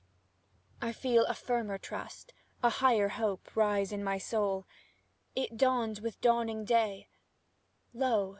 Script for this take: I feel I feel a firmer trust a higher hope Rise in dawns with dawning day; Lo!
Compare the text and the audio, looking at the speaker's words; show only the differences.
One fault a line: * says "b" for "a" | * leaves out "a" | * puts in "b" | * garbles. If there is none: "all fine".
* leaves out "I feel"
* puts in "my soul it"